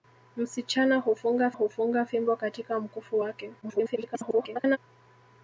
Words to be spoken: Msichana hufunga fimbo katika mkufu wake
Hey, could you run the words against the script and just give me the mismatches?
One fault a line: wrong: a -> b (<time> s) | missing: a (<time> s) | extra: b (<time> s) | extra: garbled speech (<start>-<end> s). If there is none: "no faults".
extra: hufunga (1.5 s)
extra: garbled speech (3.6-4.8 s)